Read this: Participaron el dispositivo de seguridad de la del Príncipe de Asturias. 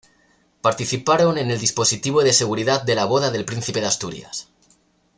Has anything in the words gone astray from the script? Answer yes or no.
yes